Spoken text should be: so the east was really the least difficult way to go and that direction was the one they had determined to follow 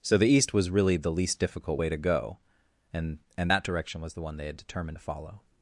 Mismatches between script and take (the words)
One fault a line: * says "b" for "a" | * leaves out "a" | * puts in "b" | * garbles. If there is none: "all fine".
* puts in "and"